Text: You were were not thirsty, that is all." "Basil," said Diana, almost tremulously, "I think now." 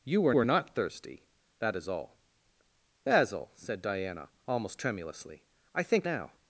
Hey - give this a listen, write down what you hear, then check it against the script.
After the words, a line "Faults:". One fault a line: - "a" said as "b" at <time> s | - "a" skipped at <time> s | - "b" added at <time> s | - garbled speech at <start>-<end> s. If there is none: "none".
You were were not thirsty, that is all." "Basil," said Diana, almost tremulously, "I think now."
Faults:
none